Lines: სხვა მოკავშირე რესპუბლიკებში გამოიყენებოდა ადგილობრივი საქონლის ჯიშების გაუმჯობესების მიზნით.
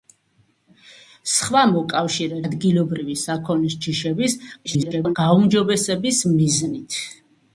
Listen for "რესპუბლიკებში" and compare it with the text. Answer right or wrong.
wrong